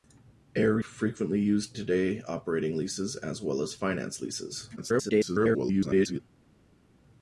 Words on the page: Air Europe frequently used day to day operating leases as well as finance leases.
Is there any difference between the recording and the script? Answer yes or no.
yes